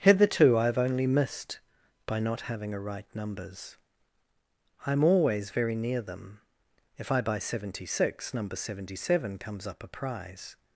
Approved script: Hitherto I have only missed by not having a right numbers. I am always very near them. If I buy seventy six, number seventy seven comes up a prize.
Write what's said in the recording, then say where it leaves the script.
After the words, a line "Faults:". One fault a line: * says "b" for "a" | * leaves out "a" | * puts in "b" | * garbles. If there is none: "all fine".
Hitherto I have only missed by not having a right numbers. I am always very near them. If I buy seventy six, number seventy seven comes up a prize.
Faults:
all fine